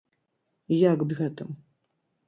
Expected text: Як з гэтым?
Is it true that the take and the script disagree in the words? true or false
false